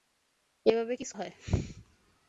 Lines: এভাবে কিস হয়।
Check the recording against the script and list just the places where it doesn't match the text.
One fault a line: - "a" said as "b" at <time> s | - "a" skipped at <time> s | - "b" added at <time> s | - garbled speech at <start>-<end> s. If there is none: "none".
none